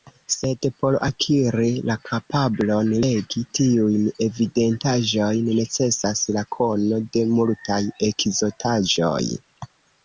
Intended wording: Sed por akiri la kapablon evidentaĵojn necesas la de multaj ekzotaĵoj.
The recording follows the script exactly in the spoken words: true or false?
false